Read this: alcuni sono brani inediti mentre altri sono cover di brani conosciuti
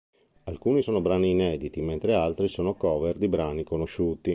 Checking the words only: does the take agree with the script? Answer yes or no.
yes